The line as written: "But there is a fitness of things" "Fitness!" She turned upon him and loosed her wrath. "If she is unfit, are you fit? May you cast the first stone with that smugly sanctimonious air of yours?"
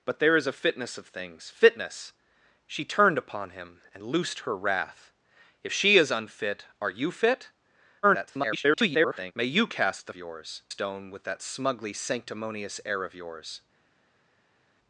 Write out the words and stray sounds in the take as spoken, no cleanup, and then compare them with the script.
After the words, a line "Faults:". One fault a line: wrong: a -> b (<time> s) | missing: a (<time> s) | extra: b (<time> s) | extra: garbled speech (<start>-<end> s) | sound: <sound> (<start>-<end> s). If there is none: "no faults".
"But there is a fitness of things" "Fitness!" She turned upon him and loosed her wrath. "If she is unfit, are you fit? [garbled] May you cast the yours stone with that smugly sanctimonious air of yours?"
Faults:
extra: garbled speech (8.0-9.3 s)
wrong: first -> yours (10.2 s)